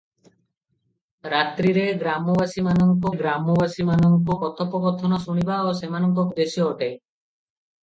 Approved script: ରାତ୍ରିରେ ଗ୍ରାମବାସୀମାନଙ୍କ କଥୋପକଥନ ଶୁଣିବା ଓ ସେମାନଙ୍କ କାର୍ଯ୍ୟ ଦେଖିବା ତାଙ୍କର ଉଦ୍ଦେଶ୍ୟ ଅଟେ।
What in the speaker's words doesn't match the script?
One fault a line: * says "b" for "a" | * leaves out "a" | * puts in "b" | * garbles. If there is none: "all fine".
* puts in "ଗ୍ରାମବାସୀମାନଙ୍କ"
* leaves out "କାର୍ଯ୍ୟ ଦେଖିବା ତାଙ୍କର"